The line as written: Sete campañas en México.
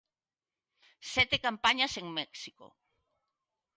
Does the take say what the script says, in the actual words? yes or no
yes